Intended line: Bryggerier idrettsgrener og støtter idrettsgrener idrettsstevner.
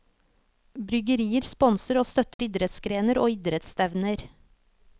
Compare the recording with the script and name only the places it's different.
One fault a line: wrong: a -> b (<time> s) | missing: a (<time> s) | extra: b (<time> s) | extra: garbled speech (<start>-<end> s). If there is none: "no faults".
wrong: idrettsgrener -> sponser (1.5 s)
extra: og (3.2 s)